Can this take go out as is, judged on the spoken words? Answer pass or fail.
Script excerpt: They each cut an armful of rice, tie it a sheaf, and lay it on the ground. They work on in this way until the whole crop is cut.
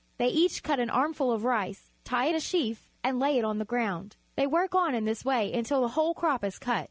pass